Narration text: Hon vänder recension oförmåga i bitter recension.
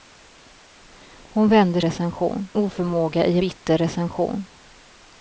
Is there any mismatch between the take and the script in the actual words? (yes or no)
no